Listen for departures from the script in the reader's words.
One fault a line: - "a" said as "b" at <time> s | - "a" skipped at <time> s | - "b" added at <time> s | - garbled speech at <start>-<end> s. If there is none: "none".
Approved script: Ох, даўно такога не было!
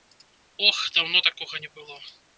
none